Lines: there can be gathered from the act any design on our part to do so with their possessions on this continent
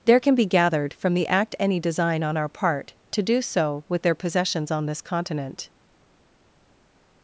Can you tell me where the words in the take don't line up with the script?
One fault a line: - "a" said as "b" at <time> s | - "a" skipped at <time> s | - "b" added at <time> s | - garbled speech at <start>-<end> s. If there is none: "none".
none